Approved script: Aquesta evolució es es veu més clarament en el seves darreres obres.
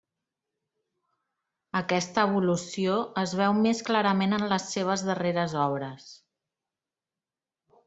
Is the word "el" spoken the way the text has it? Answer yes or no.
no